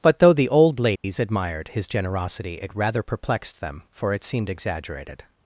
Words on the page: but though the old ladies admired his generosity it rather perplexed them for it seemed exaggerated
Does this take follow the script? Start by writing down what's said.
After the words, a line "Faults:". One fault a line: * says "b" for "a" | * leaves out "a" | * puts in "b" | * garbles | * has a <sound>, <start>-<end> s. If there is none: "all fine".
but though the old ladies admired his generosity it rather perplexed them for it seemed exaggerated
Faults:
* has a dropout, 1.0-1.0 s